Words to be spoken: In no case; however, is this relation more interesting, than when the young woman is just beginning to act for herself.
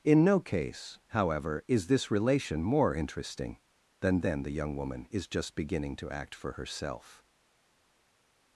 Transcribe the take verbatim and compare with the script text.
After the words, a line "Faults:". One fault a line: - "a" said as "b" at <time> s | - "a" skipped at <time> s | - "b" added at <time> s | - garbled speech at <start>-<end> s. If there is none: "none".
In no case; however, is this relation more interesting, than then the young woman is just beginning to act for herself.
Faults:
- "when" said as "then" at 4.2 s